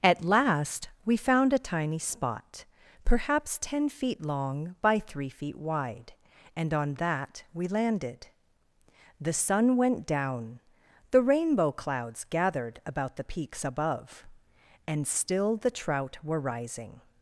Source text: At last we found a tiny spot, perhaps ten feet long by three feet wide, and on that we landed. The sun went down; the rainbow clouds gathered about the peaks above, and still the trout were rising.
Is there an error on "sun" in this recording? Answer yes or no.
no